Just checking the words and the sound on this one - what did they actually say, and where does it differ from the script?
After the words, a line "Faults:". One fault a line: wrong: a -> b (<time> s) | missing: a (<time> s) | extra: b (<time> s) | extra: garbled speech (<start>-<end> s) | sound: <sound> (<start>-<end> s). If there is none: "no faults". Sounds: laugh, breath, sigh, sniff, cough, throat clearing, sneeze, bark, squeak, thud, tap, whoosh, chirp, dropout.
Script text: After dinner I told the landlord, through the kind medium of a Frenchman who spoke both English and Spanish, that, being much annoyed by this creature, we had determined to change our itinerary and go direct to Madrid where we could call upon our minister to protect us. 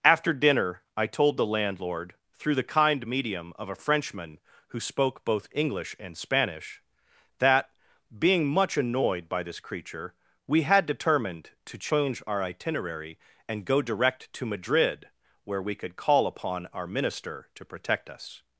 After dinner I told the landlord, through the kind medium of a Frenchman who spoke both English and Spanish, that, being much annoyed by this creature, we had determined to change our itinerary and go direct to Madrid where we could call upon our minister to protect us.
Faults:
no faults